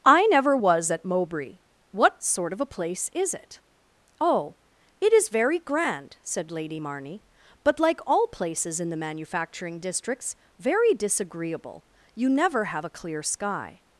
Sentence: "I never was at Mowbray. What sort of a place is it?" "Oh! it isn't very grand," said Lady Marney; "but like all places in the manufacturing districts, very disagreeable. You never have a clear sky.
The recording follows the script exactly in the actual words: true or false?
false